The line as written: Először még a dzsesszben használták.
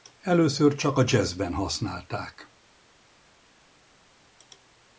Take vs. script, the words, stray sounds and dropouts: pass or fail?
fail